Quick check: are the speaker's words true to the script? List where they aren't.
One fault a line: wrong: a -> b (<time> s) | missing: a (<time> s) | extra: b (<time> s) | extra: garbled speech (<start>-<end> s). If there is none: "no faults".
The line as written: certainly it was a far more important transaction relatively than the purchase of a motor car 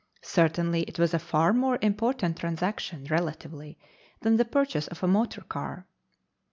no faults